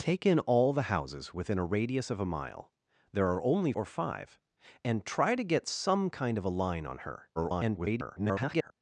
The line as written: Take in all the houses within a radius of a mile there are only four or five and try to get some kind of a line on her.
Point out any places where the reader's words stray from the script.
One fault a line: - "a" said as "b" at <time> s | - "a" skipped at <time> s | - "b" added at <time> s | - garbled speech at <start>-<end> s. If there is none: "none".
- "four" skipped at 3.7 s
- garbled speech at 7.4-8.7 s